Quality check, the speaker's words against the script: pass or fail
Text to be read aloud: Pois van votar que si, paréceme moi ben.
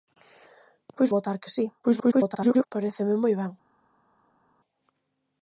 fail